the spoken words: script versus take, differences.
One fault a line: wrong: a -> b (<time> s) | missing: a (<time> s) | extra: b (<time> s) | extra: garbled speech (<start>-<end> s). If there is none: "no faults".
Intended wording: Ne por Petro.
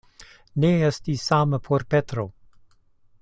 extra: estis same (0.9 s)